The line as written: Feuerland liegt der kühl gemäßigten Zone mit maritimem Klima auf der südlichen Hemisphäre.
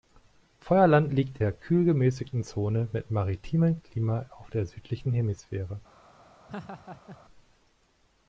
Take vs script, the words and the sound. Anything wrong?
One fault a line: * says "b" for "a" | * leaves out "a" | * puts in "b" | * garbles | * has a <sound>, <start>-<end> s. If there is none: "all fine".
* has a laugh, 6.5-7.2 s